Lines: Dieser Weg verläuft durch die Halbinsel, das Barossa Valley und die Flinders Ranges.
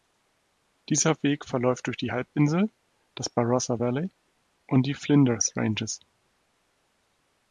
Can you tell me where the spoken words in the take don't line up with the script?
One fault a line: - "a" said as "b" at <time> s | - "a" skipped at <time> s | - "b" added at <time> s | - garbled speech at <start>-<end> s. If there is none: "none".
none